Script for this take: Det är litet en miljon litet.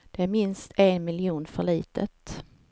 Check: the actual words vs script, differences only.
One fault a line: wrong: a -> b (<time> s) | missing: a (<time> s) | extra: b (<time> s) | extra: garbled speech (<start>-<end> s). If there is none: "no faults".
wrong: litet -> minst (0.2 s)
extra: för (1.5 s)